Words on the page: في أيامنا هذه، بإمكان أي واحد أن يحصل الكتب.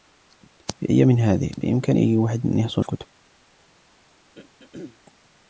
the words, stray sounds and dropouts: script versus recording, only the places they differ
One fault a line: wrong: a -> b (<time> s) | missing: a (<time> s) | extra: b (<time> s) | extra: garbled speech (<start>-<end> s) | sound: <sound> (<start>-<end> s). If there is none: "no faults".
sound: throat clearing (4.4-5.0 s)